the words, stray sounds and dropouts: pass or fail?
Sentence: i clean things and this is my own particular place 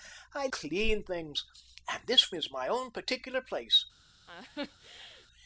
fail